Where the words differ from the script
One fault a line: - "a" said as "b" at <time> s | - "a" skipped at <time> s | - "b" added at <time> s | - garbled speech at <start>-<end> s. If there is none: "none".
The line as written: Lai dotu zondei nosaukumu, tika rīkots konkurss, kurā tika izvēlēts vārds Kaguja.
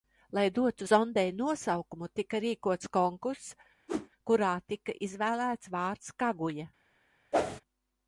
none